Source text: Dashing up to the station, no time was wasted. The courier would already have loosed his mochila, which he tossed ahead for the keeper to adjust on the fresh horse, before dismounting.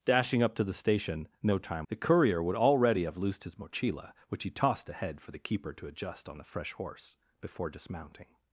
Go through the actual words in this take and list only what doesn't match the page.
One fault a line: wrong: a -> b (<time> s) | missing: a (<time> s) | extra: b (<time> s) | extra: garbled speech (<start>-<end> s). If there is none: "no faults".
missing: was wasted (1.9 s)